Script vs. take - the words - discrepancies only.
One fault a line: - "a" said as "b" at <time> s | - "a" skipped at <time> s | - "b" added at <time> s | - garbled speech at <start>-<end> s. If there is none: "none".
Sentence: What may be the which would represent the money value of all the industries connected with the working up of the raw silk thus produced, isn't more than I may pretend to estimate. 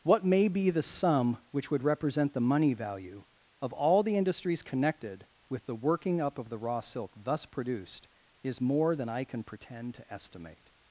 - "sum" added at 0.8 s
- "isn't" said as "is" at 8.4 s
- "may" said as "can" at 9.2 s